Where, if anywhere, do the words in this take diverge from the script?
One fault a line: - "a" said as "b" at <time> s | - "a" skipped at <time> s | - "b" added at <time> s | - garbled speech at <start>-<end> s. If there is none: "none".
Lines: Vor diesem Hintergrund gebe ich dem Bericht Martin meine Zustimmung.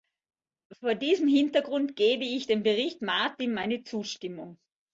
none